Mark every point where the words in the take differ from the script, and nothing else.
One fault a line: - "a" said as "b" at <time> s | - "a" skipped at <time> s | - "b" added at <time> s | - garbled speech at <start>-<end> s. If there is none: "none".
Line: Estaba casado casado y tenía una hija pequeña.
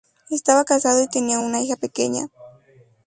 - "casado" skipped at 1.0 s